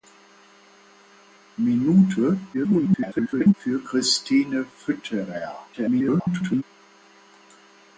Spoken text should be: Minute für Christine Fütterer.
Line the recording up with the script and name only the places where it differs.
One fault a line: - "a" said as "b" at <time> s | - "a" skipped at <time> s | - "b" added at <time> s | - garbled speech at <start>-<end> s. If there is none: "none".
- garbled speech at 2.5-3.5 s
- garbled speech at 5.7-6.6 s